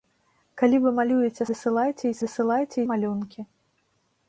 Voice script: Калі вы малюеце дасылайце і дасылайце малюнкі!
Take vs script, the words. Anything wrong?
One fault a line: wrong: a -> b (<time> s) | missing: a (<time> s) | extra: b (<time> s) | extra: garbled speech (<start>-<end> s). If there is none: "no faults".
no faults